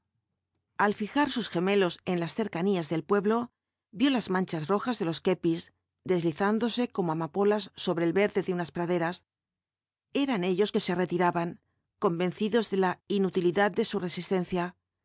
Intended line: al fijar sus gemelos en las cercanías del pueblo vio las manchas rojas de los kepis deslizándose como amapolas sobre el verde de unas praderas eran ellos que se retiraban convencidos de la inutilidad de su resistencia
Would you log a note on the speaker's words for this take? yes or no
no